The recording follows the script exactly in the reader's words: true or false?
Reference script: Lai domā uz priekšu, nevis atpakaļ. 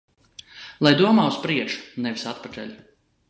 true